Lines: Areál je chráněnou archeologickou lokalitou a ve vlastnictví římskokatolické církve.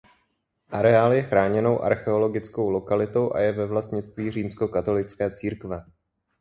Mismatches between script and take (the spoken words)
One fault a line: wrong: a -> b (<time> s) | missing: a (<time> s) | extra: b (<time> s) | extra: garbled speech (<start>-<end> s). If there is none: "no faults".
extra: je (3.4 s)